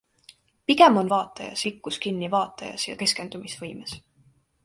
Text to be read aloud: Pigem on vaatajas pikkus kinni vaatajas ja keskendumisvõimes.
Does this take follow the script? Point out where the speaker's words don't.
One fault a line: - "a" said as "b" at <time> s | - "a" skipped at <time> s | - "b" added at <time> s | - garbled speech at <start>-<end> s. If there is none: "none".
none